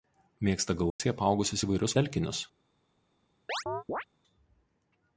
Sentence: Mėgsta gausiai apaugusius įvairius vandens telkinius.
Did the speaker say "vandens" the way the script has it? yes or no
no